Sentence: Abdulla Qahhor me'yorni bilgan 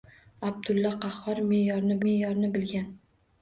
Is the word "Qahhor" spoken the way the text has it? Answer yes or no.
yes